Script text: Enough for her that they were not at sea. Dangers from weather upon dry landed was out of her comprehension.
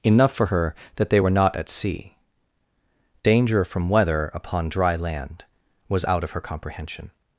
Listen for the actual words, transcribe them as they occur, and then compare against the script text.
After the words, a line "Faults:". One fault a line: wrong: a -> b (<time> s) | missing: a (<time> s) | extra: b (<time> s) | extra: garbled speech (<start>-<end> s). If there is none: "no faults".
Enough for her that they were not at sea. Danger from weather upon dry land was out of her comprehension.
Faults:
wrong: Dangers -> Danger (3.2 s)
wrong: landed -> land (4.9 s)